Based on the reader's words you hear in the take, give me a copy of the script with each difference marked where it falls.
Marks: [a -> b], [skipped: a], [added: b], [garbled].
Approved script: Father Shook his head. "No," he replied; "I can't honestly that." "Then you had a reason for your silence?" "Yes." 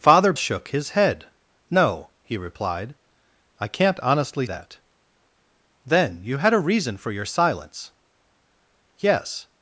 Father Shook his head. "No," he replied; "I can't honestly that." "Then you had a reason for your silence?" "Yes."